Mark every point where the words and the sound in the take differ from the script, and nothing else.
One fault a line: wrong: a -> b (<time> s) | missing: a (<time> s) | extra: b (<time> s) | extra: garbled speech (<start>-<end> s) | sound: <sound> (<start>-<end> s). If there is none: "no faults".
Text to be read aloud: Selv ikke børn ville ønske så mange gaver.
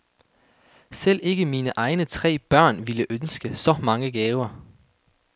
extra: mine egne tre (1.4 s)